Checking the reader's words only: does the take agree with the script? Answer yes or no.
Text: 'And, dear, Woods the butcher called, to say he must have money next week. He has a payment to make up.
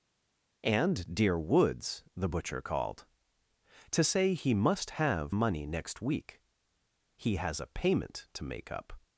yes